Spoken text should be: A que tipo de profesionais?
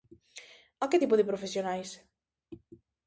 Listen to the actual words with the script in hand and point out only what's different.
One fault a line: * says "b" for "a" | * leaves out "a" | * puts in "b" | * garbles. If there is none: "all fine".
all fine